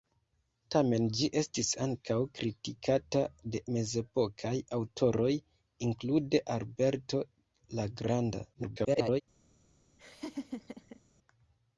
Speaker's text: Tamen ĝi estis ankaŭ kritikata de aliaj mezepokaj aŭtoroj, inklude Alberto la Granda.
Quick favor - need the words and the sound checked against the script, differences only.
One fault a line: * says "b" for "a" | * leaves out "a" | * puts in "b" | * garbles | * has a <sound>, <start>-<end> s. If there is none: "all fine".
* leaves out "aliaj"
* garbles
* has a laugh, 10.0-11.0 s